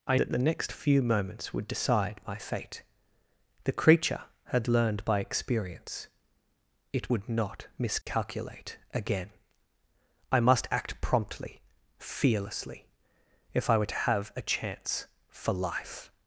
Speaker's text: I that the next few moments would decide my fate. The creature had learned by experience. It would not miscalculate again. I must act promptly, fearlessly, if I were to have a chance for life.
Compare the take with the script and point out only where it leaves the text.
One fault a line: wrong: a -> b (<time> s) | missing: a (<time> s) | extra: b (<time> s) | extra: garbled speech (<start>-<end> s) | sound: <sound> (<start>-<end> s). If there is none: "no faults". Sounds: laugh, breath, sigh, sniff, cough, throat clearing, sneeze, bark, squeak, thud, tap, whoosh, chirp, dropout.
sound: dropout (8.0-8.1 s)